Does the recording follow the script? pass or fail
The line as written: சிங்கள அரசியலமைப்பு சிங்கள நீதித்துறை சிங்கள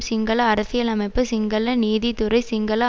pass